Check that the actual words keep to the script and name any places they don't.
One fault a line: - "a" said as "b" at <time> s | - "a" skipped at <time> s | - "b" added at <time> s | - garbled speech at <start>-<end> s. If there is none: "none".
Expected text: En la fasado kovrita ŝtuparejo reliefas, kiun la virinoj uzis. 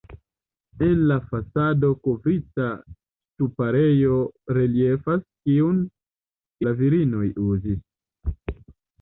none